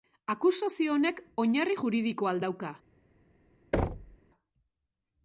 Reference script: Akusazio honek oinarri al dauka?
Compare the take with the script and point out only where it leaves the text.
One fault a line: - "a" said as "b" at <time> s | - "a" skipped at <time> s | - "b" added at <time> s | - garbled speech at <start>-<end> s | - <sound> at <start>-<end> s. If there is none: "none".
- "juridikoa" added at 1.8 s
- thud at 3.7-4.2 s